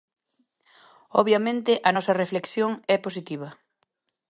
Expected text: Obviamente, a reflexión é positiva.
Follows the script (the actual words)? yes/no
no